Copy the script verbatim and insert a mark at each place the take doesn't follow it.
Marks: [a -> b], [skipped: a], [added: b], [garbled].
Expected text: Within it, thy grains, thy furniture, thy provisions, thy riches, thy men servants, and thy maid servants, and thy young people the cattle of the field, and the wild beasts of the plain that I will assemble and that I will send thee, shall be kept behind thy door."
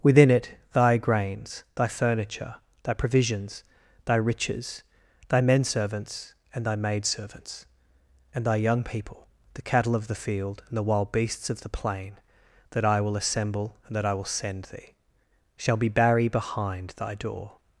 Within it, thy grains, thy furniture, thy provisions, thy riches, thy men servants, and thy maid servants, and thy young people the cattle of the field, and the wild beasts of the plain that I will assemble and that I will send thee, shall be [kept -> barry] behind thy door."